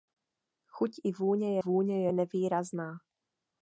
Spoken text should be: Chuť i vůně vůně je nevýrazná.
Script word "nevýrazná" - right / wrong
right